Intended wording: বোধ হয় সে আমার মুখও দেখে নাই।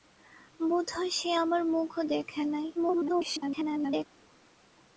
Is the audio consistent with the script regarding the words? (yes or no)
no